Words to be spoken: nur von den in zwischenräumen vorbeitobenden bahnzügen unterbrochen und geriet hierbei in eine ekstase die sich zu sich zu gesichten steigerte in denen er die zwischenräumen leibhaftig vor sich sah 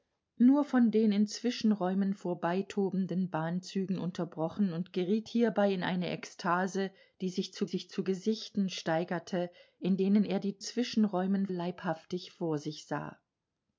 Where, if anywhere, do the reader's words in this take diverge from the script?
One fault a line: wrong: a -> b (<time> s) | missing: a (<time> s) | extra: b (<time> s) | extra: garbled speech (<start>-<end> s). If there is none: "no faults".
no faults